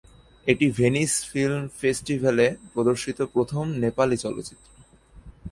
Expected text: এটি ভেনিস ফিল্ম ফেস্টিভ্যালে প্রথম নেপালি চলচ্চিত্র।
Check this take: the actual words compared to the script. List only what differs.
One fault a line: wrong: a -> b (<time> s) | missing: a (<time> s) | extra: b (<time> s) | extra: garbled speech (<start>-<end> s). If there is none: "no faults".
extra: প্রদর্শিত (2.7 s)